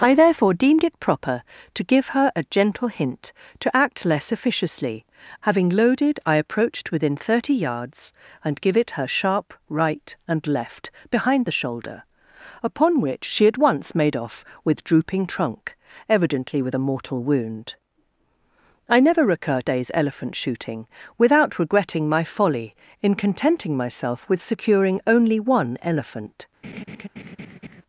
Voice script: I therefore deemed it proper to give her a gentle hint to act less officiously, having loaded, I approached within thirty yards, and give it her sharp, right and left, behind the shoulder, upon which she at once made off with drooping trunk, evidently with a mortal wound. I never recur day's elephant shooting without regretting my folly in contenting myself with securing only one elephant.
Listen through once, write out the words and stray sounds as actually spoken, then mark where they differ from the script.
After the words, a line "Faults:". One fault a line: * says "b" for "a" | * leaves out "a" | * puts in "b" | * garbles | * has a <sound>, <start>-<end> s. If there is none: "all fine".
I therefore deemed it proper to give her a gentle hint to act less officiously, having loaded, I approached within thirty yards, and give it her sharp, right and left, behind the shoulder, upon which she at once made off with drooping trunk, evidently with a mortal wound. I never recur day's elephant shooting without regretting my folly in contenting myself with securing only one elephant.
Faults:
* has a laugh, 26.6-27.8 s